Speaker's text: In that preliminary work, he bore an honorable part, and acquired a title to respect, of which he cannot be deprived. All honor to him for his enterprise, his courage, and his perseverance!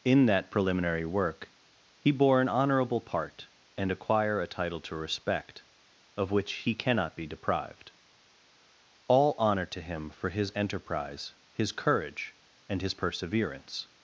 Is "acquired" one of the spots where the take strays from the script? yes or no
yes